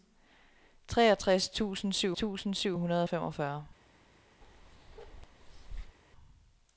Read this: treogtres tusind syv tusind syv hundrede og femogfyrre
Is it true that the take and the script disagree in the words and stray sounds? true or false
true